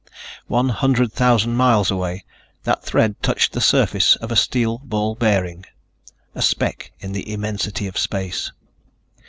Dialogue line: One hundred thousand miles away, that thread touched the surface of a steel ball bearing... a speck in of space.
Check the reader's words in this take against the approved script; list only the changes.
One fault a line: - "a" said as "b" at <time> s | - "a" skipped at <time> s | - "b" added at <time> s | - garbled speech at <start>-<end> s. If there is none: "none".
- "the immensity" added at 7.1 s